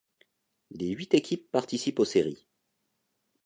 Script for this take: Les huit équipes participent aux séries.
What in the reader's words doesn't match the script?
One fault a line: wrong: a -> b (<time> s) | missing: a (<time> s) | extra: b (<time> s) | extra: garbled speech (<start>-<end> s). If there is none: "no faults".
no faults